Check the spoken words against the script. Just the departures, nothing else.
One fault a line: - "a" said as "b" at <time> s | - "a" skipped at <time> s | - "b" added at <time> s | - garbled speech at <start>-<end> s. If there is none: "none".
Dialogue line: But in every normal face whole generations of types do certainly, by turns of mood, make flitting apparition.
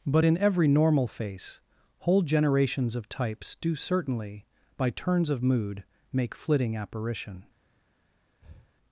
none